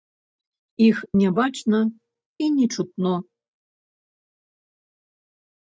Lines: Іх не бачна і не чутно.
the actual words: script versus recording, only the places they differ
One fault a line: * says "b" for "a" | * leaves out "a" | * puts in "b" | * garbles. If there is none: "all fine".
all fine